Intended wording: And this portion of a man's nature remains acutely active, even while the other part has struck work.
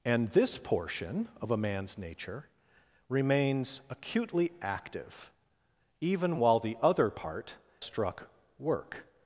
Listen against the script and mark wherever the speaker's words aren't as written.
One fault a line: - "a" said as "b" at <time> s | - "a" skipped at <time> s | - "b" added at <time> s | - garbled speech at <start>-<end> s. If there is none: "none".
- "has" skipped at 7.6 s